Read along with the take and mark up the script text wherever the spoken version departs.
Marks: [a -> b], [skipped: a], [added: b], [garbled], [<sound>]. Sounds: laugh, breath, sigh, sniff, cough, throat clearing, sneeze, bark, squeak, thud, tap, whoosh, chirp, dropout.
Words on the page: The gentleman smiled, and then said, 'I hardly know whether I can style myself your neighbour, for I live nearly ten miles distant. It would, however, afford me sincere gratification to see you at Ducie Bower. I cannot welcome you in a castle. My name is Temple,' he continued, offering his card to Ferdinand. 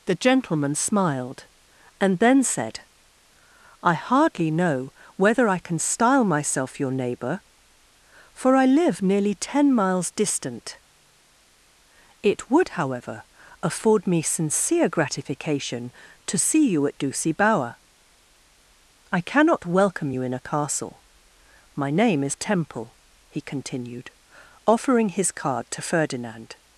The gentleman smiled, and then said, 'I hardly know whether I can style myself your neighbour, for I live nearly ten miles distant. It would, however, afford me sincere gratification to see you at Ducie Bower. I cannot welcome you in a castle. My name is Temple,' he continued, offering his card to Ferdinand.